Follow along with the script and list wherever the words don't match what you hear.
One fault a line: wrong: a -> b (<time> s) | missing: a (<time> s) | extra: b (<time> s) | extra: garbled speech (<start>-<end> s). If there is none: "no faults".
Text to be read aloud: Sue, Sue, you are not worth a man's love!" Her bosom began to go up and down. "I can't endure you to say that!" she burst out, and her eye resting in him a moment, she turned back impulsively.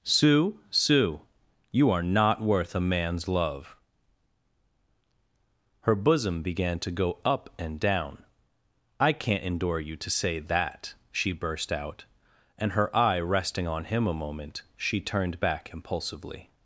wrong: in -> on (13.7 s)